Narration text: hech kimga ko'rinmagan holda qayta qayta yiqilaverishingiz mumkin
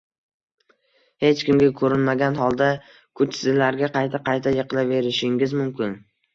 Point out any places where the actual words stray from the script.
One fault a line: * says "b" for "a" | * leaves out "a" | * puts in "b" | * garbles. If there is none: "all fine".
* puts in "kuchsizlarga"